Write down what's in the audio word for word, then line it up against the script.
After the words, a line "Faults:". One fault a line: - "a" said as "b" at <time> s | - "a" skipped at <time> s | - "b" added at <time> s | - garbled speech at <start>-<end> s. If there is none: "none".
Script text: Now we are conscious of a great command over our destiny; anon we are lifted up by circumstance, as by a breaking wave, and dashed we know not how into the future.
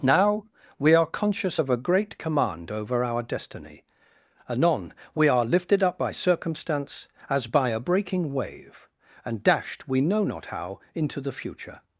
Now we are conscious of a great command over our destiny; anon we are lifted up by circumstance, as by a breaking wave, and dashed we know not how into the future.
Faults:
none